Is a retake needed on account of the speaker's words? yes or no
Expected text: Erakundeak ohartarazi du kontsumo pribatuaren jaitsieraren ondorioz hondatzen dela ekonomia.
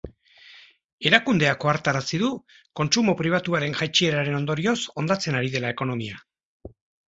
yes